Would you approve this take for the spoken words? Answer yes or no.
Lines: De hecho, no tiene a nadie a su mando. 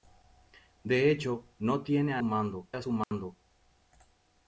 no